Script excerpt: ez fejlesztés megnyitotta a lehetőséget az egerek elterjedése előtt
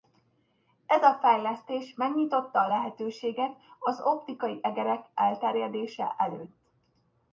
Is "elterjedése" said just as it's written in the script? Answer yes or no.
yes